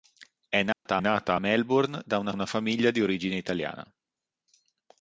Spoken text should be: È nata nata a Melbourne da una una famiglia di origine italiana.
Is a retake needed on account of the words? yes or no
no